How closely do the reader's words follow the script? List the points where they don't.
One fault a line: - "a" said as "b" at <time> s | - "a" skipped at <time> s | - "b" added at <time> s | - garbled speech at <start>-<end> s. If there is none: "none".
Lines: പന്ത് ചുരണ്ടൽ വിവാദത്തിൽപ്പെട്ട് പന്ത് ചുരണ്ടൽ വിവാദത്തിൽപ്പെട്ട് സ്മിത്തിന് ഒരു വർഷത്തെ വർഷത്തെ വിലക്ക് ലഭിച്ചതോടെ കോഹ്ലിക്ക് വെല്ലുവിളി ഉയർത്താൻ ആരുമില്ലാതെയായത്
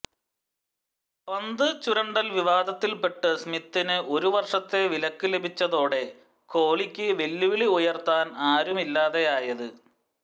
- "പന്ത് ചുരണ്ടൽ വിവാദത്തിൽപ്പെട്ട്" skipped at 3.4 s
- "വർഷത്തെ" skipped at 4.8 s